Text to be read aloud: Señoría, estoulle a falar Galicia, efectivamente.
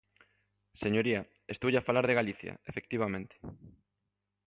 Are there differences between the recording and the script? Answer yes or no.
yes